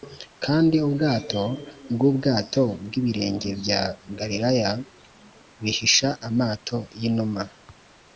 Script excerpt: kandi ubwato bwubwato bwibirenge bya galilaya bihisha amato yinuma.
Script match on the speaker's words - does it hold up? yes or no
yes